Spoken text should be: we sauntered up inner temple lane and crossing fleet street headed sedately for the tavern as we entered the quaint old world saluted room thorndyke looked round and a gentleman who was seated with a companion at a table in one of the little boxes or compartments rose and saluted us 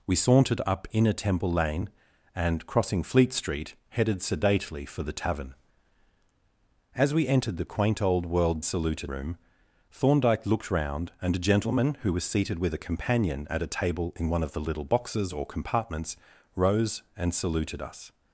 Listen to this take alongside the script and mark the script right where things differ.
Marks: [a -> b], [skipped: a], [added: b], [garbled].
we sauntered up inner temple lane and crossing fleet street headed sedately for the tavern as we entered the quaint old world saluted room thorndyke looked round and a gentleman who was seated with a companion at a table in one of the little boxes or compartments rose and saluted us